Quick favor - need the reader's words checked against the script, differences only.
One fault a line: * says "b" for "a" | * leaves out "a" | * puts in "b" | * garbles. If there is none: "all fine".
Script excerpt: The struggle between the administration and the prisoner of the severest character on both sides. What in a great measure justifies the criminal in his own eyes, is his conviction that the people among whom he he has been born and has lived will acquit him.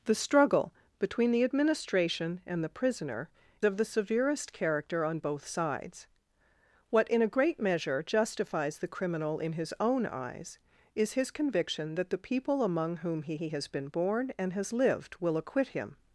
all fine